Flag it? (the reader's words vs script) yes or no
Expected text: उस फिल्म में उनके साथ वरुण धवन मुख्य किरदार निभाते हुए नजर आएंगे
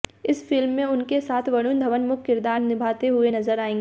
yes